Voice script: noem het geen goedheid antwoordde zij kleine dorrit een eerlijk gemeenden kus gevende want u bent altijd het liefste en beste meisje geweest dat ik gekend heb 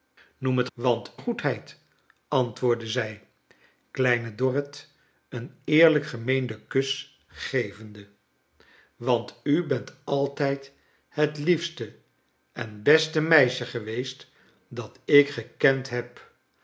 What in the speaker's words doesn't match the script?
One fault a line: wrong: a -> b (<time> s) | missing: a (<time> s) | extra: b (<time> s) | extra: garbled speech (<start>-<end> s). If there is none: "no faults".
wrong: geen -> want (0.7 s)